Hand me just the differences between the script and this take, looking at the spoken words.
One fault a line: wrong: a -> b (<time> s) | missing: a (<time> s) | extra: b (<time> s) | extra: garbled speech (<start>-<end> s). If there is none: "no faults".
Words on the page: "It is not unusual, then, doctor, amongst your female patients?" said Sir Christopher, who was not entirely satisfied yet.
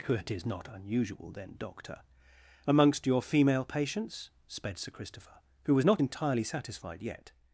wrong: said -> sped (4.5 s)